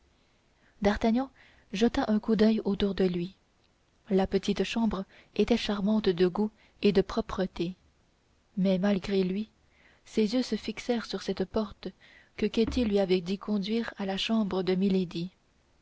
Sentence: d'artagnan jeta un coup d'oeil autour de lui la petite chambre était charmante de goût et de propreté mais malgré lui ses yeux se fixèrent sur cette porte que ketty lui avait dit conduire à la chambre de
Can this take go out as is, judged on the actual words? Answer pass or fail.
pass